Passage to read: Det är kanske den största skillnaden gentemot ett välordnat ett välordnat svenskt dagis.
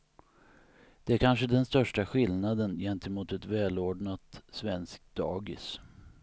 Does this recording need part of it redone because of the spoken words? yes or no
yes